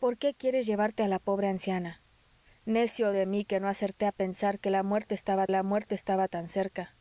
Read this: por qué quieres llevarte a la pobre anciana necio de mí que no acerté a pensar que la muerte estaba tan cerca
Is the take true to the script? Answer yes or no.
no